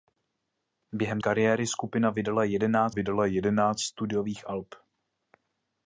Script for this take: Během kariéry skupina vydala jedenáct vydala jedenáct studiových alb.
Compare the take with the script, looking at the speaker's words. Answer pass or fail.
pass